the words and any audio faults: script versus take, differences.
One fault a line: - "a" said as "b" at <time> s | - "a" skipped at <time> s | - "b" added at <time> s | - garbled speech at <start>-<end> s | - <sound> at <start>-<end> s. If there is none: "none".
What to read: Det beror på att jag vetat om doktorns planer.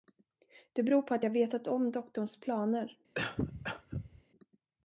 - cough at 3.1-4.2 s